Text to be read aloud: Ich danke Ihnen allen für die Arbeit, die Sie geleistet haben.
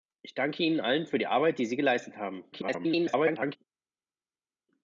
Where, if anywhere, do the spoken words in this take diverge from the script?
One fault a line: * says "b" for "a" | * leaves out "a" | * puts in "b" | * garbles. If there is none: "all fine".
* garbles